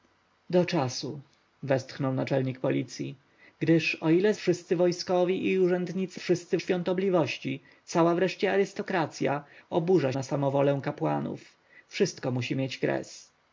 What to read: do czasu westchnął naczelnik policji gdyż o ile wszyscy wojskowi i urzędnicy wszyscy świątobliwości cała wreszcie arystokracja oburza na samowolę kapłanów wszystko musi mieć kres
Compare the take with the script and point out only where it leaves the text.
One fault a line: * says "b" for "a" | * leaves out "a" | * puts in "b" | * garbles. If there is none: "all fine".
all fine